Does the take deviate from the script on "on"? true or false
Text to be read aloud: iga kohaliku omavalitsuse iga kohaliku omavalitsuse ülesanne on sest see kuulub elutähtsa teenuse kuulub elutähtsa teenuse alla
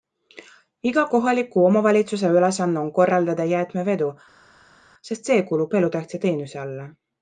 true